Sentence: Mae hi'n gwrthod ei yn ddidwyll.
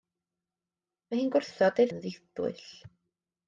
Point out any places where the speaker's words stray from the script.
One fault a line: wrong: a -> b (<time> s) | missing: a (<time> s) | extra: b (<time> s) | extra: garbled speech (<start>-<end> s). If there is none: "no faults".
no faults